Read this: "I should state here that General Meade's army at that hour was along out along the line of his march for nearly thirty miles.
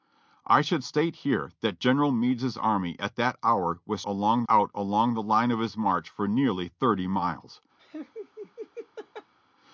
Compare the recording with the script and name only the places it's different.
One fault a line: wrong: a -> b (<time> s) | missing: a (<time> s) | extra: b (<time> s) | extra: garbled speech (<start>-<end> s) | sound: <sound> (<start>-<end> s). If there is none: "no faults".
sound: laugh (7.8-9.3 s)